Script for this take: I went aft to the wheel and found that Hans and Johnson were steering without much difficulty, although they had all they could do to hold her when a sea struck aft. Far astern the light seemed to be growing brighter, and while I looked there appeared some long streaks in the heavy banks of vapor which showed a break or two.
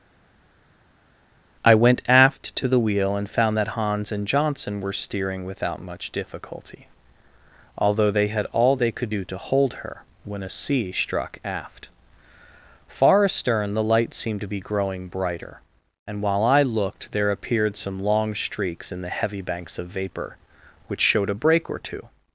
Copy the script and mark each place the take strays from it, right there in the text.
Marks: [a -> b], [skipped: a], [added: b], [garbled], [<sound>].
I went aft to the wheel and found that Hans and Johnson were steering without much difficulty, although they had all they could do to hold her when a sea struck aft. Far astern the light seemed to be growing brighter, and while I looked there appeared some long streaks in the heavy banks of vapor which showed a break or two.